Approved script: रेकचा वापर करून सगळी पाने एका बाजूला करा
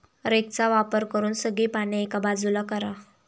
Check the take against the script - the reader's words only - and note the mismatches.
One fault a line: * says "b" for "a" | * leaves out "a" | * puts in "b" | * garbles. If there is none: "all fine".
all fine